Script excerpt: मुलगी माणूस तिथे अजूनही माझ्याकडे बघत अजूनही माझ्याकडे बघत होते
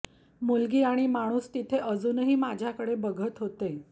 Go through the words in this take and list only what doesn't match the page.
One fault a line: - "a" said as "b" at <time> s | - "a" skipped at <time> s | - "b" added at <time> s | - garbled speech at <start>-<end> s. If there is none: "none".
- "आणि" added at 0.8 s
- "अजूनही माझ्याकडे बघत" skipped at 3.4 s